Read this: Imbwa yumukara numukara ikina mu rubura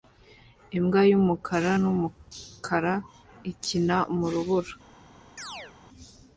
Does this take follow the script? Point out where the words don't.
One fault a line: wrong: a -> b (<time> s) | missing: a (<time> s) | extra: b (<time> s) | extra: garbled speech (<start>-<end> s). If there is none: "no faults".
no faults